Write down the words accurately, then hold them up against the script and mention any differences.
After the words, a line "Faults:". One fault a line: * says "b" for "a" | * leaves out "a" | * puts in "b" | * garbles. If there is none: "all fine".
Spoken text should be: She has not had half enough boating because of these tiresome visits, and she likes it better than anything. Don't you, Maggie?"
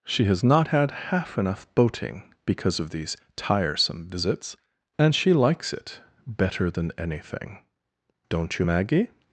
She has not had half enough boating because of these tiresome visits, and she likes it better than anything. Don't you, Maggie?"
Faults:
all fine